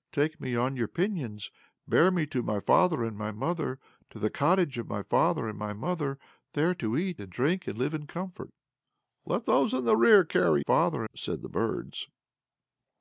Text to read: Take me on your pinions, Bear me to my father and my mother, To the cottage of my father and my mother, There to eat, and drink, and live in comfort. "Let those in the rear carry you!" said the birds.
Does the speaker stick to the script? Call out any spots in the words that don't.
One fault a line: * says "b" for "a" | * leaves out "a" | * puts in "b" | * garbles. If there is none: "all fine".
* says "father" for "you"